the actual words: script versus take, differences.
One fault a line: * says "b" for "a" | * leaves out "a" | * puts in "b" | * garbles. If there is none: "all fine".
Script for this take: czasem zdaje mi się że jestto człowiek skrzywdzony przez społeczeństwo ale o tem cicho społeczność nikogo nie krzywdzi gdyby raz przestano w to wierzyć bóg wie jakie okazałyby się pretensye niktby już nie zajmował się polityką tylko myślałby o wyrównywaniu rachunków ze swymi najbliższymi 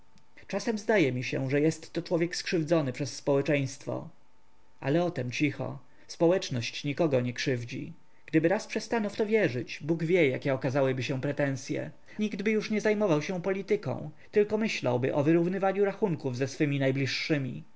all fine